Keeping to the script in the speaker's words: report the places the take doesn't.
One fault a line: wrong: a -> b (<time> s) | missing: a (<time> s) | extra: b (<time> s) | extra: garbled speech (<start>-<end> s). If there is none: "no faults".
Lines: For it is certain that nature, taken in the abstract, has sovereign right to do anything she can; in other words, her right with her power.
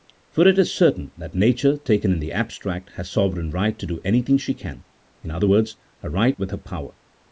no faults